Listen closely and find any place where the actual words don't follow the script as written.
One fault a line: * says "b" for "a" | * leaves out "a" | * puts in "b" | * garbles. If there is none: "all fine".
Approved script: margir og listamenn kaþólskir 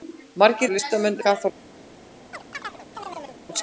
all fine